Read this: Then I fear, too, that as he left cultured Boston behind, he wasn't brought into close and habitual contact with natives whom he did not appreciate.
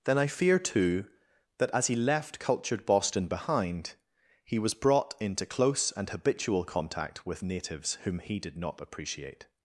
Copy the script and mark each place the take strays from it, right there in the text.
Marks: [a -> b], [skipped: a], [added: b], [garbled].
Then I fear, too, that as he left cultured Boston behind, he [wasn't -> was] brought into close and habitual contact with natives whom he did not appreciate.